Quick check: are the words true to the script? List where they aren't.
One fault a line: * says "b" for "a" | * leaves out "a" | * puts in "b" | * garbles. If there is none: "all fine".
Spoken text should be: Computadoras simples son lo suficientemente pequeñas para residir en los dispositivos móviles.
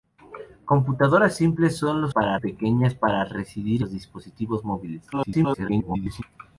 * says "para" for "suficientemente"
* leaves out "en"
* garbles